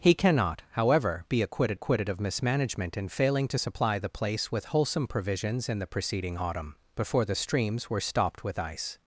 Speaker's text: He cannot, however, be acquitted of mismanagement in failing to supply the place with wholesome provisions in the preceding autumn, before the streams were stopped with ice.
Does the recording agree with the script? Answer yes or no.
no